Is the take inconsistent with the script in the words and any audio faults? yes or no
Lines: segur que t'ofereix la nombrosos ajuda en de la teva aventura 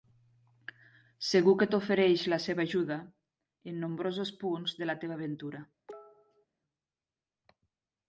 yes